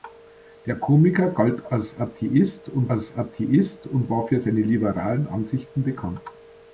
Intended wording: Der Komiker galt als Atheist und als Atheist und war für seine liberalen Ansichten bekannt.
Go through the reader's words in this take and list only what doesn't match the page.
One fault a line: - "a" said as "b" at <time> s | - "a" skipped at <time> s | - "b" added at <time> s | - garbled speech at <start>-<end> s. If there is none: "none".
none